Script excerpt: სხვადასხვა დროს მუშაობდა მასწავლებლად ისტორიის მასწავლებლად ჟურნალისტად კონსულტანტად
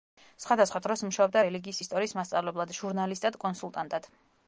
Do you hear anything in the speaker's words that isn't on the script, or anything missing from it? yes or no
yes